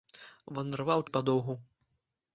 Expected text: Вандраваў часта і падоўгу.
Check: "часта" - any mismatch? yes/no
yes